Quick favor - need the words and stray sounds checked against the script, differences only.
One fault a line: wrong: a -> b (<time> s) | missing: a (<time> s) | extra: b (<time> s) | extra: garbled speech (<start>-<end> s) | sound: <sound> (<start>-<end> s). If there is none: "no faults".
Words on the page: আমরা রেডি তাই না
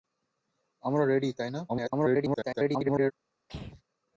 extra: garbled speech (1.7-3.1 s)
sound: throat clearing (3.5-3.8 s)